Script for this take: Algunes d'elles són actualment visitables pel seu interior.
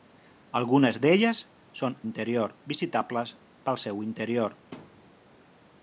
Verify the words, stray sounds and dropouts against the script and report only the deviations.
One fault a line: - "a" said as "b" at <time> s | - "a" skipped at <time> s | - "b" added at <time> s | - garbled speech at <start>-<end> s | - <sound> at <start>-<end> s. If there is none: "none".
- "actualment" said as "interior" at 2.1 s
- thud at 4.7-5.2 s